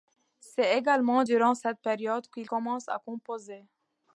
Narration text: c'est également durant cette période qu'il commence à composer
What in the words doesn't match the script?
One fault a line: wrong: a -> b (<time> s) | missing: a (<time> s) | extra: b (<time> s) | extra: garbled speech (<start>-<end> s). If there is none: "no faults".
no faults